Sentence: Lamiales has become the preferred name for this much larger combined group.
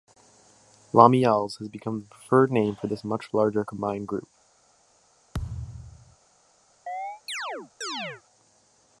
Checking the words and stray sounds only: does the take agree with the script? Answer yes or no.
no